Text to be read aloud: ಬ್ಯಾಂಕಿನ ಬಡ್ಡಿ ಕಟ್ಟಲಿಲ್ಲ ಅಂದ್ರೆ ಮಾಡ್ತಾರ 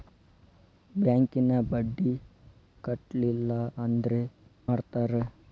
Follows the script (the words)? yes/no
yes